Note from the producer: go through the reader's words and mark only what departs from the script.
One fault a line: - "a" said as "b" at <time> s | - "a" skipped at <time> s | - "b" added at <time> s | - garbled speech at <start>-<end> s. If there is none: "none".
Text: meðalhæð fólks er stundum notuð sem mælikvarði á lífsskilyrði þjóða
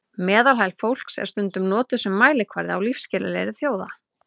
none